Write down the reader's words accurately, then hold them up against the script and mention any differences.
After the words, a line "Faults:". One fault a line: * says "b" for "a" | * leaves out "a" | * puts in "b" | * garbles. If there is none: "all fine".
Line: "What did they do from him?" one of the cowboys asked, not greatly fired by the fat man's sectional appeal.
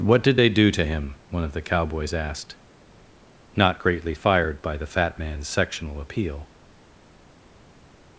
"What did they do to him?" one of the cowboys asked, not greatly fired by the fat man's sectional appeal.
Faults:
* says "to" for "from"